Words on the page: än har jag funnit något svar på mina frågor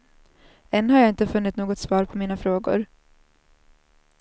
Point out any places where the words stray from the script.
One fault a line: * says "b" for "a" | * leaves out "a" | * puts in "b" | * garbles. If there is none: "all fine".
* puts in "inte"